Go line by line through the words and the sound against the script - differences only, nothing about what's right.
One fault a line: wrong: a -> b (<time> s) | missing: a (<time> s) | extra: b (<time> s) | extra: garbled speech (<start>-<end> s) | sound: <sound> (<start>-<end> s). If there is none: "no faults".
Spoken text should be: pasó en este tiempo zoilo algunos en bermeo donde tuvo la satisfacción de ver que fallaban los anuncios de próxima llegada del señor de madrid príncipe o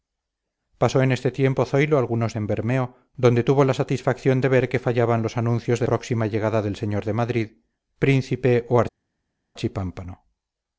no faults